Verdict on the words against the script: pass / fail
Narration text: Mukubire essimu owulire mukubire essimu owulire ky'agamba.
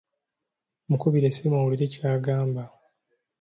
fail